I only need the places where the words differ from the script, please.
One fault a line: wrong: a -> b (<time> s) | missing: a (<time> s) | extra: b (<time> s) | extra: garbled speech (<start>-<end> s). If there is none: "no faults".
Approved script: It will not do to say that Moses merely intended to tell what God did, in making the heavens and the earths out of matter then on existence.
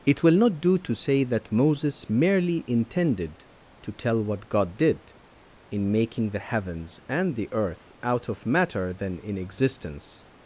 wrong: earths -> earth (7.5 s)
wrong: on -> in (9.2 s)